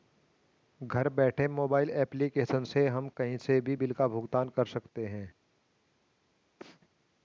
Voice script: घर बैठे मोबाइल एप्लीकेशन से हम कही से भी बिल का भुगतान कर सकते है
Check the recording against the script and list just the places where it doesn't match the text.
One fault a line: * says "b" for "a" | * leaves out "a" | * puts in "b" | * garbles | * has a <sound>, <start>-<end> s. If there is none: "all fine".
* has a sneeze, 6.6-6.8 s